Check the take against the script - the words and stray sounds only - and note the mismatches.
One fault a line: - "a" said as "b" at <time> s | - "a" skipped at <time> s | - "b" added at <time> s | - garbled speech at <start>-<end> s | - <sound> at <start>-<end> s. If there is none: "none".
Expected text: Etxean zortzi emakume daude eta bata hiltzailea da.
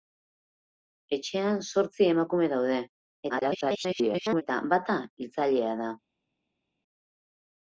- garbled speech at 3.3-4.4 s